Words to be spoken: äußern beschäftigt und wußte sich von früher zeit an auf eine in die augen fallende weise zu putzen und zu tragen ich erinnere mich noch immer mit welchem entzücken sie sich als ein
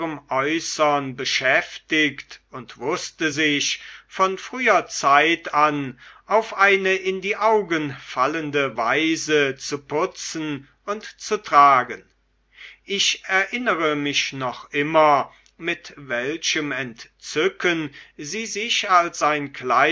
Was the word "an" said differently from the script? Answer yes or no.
no